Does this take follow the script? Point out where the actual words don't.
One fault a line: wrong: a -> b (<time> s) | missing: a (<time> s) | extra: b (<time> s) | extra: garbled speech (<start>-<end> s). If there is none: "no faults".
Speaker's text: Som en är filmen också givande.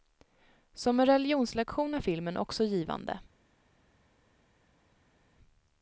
extra: religionslektion (1.0 s)